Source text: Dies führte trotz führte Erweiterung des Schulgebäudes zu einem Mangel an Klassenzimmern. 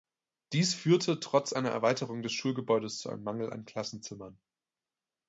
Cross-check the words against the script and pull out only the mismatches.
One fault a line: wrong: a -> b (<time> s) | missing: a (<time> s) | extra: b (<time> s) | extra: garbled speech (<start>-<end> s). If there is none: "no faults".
wrong: führte -> einer (1.5 s)